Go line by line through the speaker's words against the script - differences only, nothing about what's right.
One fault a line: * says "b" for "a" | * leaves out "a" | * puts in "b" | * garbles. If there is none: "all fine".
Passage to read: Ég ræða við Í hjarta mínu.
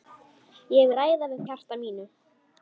all fine